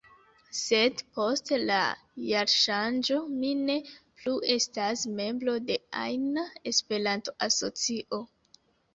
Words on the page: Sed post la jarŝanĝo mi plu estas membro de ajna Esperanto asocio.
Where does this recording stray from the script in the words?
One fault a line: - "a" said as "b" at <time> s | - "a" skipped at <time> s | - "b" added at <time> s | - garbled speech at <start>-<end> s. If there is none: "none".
- "ne" added at 3.6 s